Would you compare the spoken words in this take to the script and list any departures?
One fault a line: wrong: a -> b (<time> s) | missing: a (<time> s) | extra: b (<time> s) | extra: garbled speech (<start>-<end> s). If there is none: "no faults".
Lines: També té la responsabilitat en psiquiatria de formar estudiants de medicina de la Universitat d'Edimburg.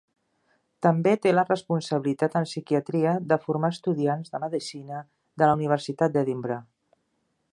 no faults